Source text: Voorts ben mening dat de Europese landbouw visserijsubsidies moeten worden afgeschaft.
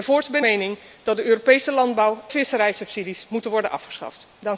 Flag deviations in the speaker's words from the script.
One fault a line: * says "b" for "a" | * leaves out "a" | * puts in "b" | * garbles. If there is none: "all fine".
all fine